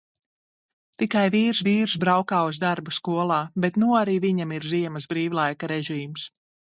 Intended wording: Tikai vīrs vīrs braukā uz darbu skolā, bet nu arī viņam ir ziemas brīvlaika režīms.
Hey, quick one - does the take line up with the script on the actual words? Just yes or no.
yes